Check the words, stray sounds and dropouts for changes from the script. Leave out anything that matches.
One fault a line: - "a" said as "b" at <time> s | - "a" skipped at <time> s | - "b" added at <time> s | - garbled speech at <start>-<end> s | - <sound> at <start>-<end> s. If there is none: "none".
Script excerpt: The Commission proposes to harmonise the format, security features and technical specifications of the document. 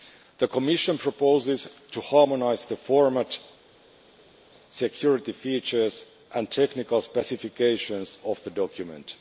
none